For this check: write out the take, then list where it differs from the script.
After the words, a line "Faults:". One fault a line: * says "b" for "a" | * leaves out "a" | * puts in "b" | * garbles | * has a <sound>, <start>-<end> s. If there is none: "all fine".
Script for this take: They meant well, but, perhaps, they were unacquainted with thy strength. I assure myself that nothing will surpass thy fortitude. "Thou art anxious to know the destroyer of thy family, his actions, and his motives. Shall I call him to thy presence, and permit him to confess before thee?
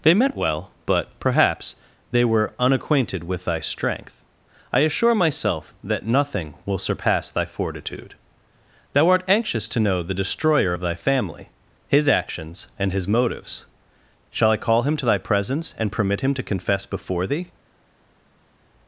They meant well, but, perhaps, they were unacquainted with thy strength. I assure myself that nothing will surpass thy fortitude. "Thou art anxious to know the destroyer of thy family, his actions, and his motives. Shall I call him to thy presence, and permit him to confess before thee?
Faults:
all fine